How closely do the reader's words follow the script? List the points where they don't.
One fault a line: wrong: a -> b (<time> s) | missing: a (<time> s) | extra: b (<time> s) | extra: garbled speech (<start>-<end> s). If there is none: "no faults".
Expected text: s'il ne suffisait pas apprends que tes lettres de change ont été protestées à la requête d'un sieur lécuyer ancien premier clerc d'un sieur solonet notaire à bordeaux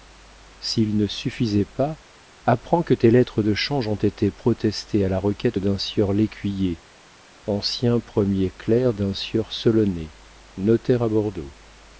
no faults